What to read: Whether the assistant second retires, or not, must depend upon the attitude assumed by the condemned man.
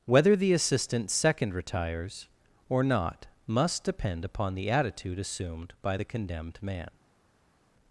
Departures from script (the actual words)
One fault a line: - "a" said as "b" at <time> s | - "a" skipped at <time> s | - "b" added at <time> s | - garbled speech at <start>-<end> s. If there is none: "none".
none